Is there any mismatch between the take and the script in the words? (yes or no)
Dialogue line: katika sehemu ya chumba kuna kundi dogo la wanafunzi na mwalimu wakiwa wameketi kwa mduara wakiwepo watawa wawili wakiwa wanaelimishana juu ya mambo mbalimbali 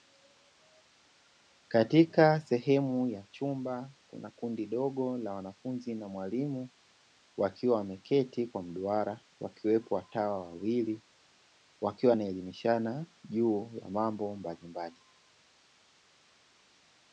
no